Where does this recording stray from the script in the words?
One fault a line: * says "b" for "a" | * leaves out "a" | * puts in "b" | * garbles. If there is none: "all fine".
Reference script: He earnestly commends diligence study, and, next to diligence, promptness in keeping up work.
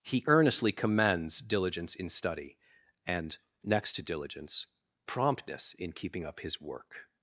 * puts in "in"
* puts in "his"